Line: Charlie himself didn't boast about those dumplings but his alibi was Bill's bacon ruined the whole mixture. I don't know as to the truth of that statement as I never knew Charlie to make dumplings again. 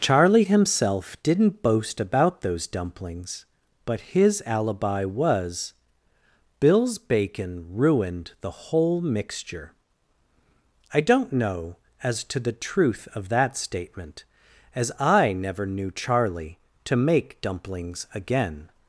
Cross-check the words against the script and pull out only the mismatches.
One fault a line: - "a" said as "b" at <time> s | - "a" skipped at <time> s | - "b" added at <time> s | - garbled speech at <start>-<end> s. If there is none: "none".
none